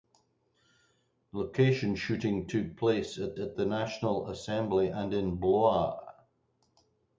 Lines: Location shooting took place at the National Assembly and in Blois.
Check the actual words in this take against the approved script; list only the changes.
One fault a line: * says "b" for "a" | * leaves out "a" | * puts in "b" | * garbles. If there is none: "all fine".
* puts in "at"